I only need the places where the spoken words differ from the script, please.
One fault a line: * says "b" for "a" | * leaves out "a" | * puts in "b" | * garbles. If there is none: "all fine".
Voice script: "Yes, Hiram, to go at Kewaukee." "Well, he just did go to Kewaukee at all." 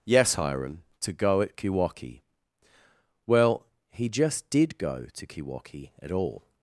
all fine